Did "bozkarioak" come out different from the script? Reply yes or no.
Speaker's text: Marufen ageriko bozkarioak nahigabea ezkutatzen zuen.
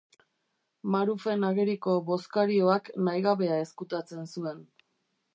no